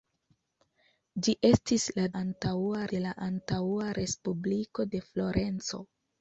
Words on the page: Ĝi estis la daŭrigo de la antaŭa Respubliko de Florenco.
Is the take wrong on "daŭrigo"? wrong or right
wrong